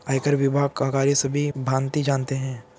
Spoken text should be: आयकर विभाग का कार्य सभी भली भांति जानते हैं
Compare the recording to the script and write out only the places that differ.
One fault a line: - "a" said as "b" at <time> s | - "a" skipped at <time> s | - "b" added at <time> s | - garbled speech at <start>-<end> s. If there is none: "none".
- "भली" skipped at 1.5 s